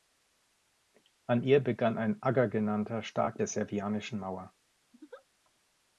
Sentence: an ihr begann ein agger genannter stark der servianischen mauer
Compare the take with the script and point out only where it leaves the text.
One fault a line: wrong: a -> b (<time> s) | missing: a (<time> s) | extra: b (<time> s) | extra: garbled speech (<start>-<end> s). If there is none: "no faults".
no faults